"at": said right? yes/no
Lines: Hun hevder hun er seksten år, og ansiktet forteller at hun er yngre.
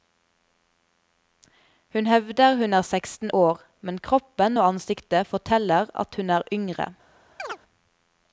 yes